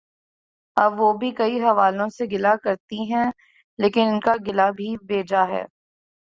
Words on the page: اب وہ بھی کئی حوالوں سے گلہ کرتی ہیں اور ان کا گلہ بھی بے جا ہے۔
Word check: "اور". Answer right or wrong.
wrong